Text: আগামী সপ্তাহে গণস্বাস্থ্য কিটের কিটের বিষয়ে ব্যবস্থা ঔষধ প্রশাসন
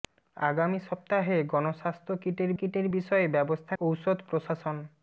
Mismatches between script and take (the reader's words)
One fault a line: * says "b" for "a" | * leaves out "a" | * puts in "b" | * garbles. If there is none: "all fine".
all fine